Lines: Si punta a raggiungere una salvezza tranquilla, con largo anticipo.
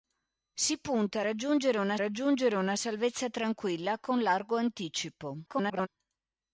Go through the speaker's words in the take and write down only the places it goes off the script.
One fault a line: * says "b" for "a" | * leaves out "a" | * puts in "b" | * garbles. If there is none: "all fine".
* puts in "raggiungere una"
* garbles